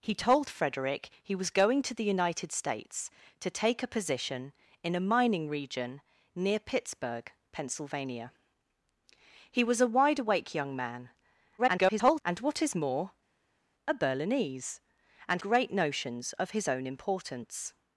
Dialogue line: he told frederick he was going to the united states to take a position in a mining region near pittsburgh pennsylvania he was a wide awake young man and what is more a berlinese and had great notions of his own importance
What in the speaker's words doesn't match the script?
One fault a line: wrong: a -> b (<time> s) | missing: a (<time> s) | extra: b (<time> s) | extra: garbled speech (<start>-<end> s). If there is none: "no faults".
extra: garbled speech (11.6-12.2 s)
missing: had (15.4 s)